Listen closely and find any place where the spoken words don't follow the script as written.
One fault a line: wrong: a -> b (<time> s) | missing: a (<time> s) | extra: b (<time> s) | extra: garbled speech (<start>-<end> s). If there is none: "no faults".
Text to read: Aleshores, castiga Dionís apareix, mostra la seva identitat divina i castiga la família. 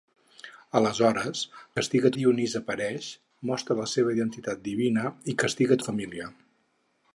no faults